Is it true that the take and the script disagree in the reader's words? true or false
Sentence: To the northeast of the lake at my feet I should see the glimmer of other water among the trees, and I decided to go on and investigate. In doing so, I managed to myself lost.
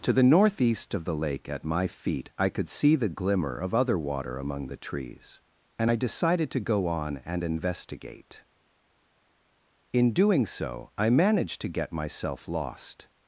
true